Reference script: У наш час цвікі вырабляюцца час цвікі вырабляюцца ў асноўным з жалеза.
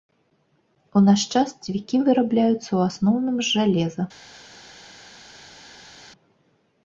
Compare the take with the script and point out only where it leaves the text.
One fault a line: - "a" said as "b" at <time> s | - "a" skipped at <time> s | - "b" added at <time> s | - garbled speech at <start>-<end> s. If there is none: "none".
- "час цвікі вырабляюцца" skipped at 2.6 s